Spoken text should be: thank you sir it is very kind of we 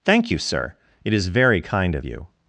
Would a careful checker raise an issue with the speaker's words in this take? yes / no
yes